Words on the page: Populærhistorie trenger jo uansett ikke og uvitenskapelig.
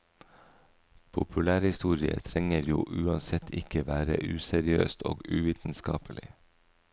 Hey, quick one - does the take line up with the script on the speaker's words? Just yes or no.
no